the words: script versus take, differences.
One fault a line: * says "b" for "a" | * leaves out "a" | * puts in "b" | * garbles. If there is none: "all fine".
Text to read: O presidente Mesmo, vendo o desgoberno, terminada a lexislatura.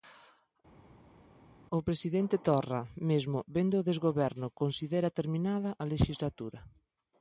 * puts in "Torra"
* puts in "considera"